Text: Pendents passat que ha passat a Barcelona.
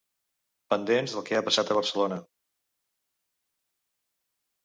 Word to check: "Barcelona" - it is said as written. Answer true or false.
true